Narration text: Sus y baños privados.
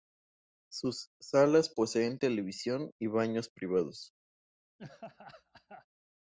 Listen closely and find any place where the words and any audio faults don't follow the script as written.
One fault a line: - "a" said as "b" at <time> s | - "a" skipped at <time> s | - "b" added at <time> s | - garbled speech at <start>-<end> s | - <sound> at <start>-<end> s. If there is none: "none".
- "salas poseen televisión" added at 1.2 s
- laugh at 4.8-5.9 s